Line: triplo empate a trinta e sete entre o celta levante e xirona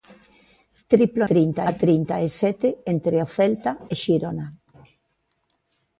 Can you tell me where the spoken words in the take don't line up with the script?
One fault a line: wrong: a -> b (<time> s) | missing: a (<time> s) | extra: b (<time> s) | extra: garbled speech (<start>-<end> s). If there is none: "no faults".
wrong: empate -> trinta (1.3 s)
missing: levante (3.7 s)